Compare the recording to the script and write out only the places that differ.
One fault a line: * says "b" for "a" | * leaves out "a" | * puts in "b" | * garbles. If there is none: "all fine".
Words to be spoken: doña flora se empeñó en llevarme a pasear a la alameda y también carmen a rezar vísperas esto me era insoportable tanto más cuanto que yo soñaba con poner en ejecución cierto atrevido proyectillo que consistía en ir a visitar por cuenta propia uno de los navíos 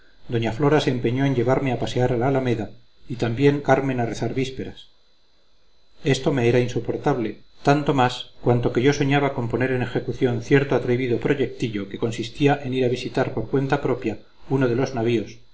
all fine